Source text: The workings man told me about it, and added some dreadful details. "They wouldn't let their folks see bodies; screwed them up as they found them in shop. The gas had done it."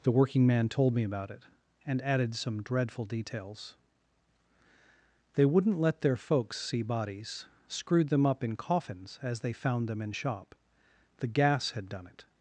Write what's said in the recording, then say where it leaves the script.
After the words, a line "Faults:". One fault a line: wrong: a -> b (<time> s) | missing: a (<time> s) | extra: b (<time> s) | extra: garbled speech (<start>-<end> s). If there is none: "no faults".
The working man told me about it, and added some dreadful details. "They wouldn't let their folks see bodies; screwed them up in coffins as they found them in shop. The gas had done it."
Faults:
wrong: workings -> working (0.1 s)
extra: in coffins (8.4 s)